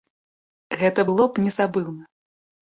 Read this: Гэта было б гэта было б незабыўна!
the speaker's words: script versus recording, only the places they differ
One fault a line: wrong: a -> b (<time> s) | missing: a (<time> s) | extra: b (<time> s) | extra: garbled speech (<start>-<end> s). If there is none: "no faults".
missing: гэта было б (1.5 s)